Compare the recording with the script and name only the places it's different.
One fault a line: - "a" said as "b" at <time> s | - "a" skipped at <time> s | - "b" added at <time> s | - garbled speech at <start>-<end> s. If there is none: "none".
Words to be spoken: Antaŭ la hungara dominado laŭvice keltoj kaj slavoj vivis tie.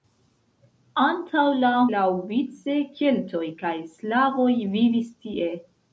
- "hungara dominado" skipped at 1.7 s